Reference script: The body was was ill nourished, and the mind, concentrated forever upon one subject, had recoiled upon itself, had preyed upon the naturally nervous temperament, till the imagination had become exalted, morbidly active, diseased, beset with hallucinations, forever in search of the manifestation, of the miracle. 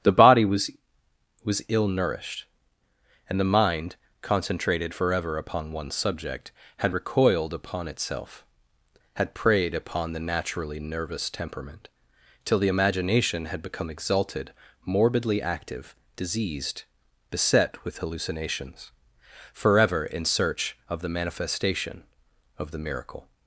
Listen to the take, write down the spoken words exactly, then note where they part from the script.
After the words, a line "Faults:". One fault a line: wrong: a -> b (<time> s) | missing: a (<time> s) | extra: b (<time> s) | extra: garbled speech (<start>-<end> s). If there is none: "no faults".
The body was was ill nourished, and the mind, concentrated forever upon one subject, had recoiled upon itself, had preyed upon the naturally nervous temperament, till the imagination had become exalted, morbidly active, diseased, beset with hallucinations, forever in search of the manifestation, of the miracle.
Faults:
no faults